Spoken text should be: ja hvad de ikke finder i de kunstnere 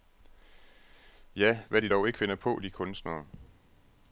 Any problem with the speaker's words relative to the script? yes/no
yes